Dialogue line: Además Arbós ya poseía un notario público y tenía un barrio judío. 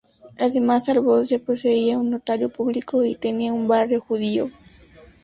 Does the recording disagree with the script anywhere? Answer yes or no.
no